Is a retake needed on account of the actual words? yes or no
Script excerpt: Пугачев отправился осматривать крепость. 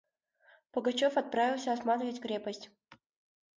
no